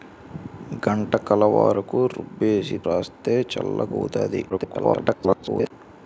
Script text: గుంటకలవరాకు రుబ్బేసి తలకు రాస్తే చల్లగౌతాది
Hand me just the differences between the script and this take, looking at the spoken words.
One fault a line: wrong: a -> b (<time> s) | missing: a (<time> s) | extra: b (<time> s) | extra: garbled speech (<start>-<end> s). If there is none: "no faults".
missing: తలకు (2.8 s)
extra: garbled speech (4.5-5.7 s)